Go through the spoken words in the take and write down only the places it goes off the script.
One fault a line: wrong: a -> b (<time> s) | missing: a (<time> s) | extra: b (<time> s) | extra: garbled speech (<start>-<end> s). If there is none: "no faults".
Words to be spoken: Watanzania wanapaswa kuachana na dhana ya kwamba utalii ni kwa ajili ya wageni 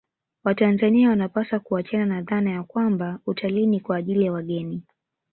no faults